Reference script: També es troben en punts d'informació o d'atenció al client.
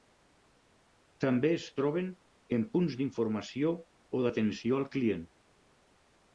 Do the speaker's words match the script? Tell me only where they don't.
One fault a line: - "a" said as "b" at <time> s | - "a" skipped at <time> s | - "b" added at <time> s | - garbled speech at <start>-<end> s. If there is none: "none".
none